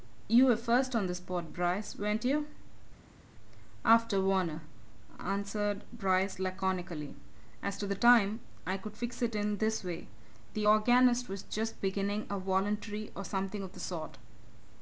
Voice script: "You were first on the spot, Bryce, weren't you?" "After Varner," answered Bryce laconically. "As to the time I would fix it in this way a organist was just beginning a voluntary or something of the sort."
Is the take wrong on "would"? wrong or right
wrong